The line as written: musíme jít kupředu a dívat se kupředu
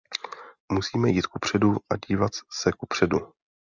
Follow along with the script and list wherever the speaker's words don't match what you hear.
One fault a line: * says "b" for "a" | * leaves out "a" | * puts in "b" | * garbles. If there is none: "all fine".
all fine